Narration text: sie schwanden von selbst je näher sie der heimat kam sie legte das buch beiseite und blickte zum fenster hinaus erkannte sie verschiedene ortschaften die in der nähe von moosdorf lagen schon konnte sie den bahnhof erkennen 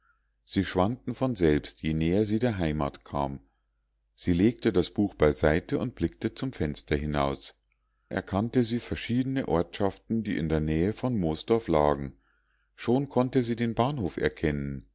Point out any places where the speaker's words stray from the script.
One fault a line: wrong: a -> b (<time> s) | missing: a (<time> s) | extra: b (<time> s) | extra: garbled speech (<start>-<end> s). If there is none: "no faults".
no faults